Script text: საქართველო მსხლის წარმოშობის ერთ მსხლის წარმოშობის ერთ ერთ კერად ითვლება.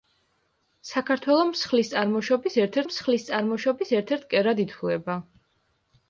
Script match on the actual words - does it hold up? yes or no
yes